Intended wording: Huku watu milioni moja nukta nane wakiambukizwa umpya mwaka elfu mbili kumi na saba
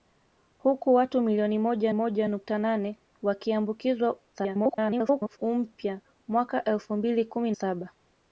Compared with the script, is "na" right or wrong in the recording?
wrong